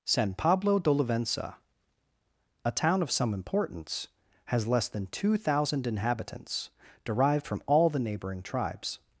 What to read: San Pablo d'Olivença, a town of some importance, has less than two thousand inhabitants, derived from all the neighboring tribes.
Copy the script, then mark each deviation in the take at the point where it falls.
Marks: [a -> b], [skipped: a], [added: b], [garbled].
San Pablo d'Olivença, a town of some importance, has less than two thousand inhabitants, derived from all the neighboring tribes.